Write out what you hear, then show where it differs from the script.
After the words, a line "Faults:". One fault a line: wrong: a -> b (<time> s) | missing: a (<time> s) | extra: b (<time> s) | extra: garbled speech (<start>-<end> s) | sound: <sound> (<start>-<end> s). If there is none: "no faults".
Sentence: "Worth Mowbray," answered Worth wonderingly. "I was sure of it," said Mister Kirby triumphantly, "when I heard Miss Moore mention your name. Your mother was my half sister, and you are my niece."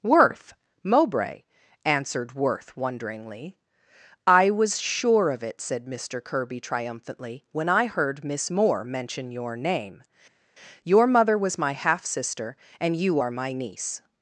"Worth Mowbray," answered Worth wonderingly. "I was sure of it," said Mister Kirby triumphantly, "when I heard Miss Moore mention your name. Your mother was my half sister, and you are my niece."
Faults:
no faults